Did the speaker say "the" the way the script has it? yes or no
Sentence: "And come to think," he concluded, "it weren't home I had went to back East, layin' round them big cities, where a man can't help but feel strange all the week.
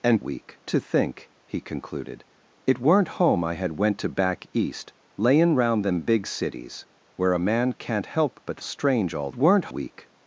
no